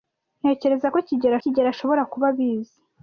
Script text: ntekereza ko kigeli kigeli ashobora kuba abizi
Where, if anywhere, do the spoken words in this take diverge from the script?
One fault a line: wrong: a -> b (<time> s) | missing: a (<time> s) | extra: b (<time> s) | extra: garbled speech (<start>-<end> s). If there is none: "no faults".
no faults